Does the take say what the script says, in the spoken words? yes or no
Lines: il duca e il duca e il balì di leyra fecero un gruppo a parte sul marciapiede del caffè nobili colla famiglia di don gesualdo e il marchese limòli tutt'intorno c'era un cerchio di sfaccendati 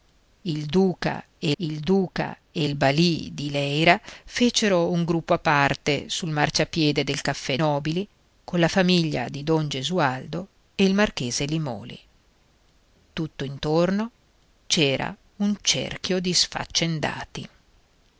yes